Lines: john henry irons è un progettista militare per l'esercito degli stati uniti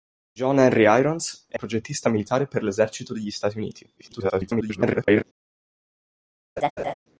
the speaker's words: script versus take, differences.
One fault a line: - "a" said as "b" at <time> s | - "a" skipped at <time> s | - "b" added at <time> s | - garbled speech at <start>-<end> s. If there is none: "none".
- "un" skipped at 1.6 s
- garbled speech at 4.0-5.2 s